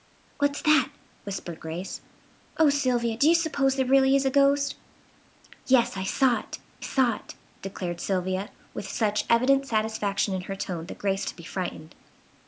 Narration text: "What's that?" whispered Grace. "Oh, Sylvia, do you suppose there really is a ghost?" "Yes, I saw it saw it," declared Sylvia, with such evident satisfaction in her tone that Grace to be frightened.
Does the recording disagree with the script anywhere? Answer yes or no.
no